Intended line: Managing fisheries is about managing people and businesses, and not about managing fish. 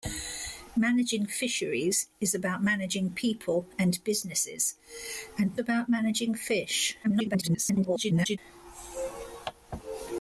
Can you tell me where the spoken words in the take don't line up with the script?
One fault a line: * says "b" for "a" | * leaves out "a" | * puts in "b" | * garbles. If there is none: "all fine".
* leaves out "not"
* garbles